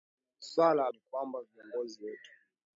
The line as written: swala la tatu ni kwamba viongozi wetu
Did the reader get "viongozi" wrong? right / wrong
right